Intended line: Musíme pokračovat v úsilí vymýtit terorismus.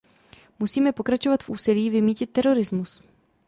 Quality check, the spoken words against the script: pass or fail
pass